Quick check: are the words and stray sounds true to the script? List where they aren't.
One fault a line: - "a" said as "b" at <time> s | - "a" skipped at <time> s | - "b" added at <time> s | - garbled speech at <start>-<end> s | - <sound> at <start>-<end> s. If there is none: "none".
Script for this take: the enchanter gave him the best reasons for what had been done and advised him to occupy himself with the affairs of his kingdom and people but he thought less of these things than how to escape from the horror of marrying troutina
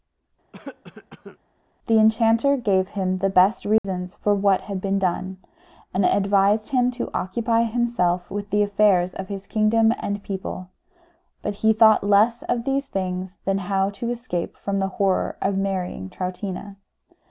- cough at 0.5-1.4 s
- dropout at 3.8-3.8 s